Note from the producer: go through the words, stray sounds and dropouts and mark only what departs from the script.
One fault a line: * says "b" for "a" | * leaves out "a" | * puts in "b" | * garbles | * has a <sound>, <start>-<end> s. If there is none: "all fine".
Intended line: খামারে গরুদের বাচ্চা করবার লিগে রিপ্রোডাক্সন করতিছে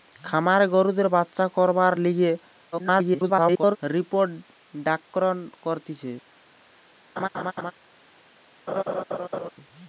* garbles
* has a laugh, 7.2-7.7 s
* has a laugh, 8.7-9.5 s